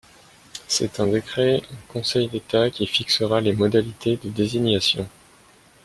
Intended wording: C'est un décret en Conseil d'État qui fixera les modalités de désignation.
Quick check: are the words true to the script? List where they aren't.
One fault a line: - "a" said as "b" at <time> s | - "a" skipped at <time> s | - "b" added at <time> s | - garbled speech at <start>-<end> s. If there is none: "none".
none